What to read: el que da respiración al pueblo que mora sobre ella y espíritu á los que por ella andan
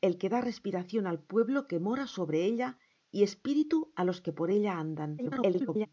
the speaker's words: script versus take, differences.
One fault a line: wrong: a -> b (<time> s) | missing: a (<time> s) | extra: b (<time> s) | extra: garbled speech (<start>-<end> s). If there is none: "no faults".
extra: garbled speech (5.2-5.9 s)